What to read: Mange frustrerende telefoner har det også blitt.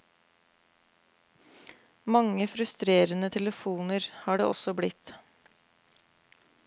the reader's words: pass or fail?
pass